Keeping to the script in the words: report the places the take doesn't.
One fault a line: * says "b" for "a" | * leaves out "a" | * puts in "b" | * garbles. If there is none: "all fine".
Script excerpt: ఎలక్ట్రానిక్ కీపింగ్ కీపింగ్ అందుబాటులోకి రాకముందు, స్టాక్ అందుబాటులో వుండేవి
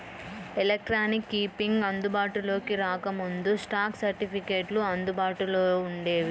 * leaves out "కీపింగ్"
* puts in "సర్టిఫికెట్లు"